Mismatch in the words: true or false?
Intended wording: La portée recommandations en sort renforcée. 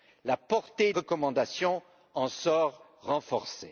false